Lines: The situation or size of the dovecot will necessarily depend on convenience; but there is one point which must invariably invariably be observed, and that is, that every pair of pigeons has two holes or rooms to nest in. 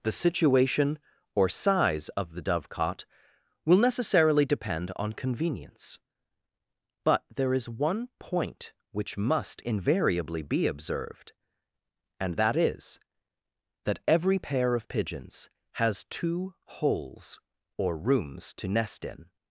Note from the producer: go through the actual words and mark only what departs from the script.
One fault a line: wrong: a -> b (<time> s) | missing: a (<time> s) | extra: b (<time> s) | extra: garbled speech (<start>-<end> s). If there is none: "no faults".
missing: invariably (10.4 s)